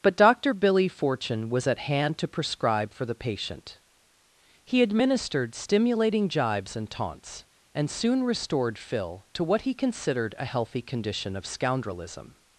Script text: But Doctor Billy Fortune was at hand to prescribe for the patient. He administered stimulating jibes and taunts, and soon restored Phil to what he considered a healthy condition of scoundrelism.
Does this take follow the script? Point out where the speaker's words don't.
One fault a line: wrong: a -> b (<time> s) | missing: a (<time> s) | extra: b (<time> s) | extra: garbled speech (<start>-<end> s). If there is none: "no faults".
no faults